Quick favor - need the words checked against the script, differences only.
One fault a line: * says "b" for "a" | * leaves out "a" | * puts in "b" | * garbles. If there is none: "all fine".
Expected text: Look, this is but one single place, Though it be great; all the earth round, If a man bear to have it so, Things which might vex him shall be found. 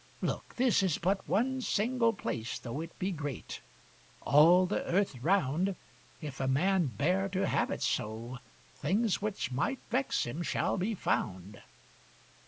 all fine